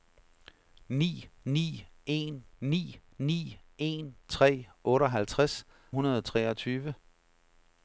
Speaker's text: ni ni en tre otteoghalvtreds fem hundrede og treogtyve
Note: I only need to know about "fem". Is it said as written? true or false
false